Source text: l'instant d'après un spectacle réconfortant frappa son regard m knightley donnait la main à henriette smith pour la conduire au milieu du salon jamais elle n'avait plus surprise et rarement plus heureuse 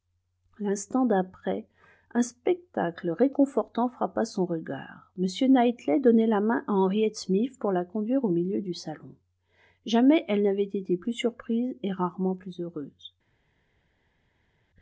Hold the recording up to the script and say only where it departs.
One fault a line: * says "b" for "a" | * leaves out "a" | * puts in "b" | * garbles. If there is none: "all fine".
* puts in "été"